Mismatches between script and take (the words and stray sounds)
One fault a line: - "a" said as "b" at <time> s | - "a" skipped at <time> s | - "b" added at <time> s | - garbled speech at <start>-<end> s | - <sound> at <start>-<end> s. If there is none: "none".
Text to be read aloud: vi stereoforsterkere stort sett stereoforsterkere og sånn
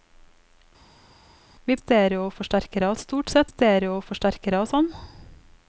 none